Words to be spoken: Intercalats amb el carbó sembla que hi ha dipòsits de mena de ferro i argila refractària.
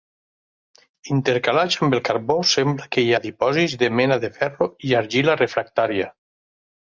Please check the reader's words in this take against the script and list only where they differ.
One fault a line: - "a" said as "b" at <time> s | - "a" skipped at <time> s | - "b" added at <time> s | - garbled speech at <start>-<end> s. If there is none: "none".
none